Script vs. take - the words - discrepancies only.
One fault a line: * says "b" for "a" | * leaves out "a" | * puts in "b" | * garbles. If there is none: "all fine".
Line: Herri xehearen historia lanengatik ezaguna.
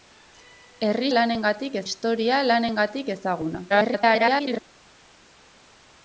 * says "lanengatik" for "xehearen"
* garbles